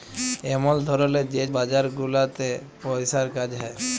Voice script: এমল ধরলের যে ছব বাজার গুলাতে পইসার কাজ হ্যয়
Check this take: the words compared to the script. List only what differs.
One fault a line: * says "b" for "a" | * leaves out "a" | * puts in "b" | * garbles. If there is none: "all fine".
* leaves out "ছব"